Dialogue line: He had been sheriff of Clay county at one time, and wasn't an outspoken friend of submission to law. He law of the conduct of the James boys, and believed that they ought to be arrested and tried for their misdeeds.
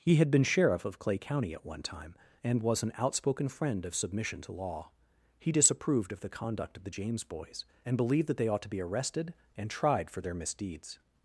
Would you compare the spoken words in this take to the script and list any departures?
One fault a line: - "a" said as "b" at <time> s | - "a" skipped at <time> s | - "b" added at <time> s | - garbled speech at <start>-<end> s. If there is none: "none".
- "wasn't" said as "was" at 2.6 s
- "law" said as "disapproved" at 5.5 s